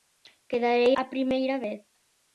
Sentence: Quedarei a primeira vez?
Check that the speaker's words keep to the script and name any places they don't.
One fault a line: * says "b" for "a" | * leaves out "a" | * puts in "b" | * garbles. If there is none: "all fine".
all fine